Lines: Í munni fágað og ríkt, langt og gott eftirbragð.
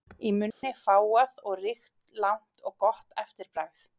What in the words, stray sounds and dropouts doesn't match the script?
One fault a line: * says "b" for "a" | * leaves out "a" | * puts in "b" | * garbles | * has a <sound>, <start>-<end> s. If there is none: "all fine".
* has a dropout, 0.5-0.6 s